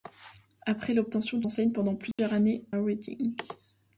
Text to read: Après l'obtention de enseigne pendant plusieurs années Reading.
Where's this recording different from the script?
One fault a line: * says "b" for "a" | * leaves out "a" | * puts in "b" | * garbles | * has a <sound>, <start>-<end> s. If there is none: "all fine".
* has a dropout, 2.1-2.2 s